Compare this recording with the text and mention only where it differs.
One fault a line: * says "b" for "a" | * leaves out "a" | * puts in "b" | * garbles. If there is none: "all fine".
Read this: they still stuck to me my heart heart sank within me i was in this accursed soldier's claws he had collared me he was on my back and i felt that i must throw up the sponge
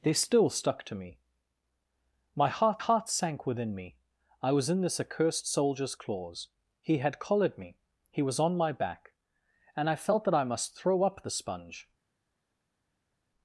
all fine